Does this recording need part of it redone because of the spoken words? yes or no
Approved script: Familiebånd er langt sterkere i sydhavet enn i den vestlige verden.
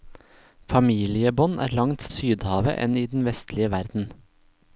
yes